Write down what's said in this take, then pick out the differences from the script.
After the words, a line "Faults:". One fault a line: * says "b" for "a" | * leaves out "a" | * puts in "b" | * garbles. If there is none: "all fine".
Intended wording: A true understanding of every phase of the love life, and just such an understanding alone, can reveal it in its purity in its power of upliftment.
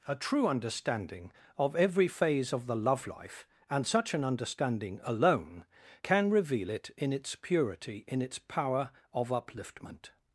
A true understanding of every phase of the love life, and such an understanding alone, can reveal it in its purity in its power of upliftment.
Faults:
* leaves out "just"